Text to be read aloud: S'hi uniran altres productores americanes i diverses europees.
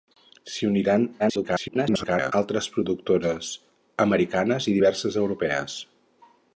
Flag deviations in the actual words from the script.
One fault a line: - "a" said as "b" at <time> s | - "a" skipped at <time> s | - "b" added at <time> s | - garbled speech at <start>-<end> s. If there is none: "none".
- garbled speech at 1.2-2.3 s